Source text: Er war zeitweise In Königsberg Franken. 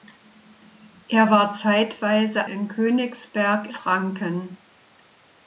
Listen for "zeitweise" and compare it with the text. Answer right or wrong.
right